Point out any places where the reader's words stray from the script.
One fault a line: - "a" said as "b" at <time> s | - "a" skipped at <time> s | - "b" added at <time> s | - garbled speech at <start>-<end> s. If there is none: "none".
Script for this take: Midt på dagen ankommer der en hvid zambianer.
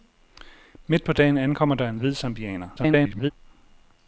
- garbled speech at 2.8-3.3 s